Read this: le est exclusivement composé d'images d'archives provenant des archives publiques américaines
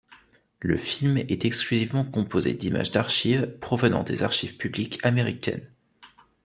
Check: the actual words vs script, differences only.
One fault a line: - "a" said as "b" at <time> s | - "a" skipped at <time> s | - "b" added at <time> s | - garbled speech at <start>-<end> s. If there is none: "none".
- "film" added at 0.8 s